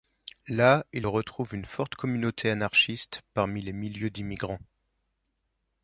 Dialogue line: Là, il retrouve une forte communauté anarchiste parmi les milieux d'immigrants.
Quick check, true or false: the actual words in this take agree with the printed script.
true